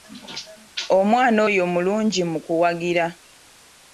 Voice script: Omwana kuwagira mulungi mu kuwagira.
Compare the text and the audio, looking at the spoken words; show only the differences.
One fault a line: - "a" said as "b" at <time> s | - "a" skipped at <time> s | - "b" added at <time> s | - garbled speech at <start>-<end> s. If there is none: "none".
- "kuwagira" said as "oyo" at 1.5 s